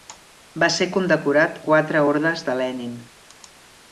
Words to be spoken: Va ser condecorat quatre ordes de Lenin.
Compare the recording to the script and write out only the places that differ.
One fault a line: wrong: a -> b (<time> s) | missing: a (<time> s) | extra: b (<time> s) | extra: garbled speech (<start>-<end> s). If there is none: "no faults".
no faults